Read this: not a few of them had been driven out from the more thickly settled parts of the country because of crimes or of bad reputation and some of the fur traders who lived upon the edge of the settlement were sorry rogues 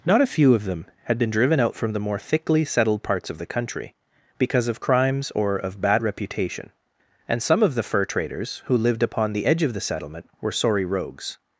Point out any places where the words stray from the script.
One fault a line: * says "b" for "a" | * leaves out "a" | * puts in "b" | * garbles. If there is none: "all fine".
all fine